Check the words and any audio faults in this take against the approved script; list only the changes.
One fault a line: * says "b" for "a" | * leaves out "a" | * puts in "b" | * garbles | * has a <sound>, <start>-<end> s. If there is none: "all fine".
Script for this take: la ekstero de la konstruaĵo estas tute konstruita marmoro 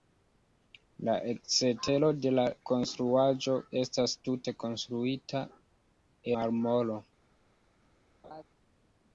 * has a laugh, 8.2-8.4 s